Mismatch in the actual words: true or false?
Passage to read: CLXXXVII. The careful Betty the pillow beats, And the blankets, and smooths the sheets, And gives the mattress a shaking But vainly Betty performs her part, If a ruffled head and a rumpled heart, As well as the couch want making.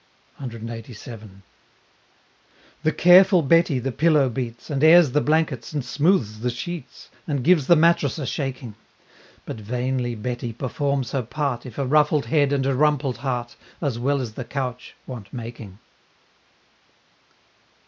true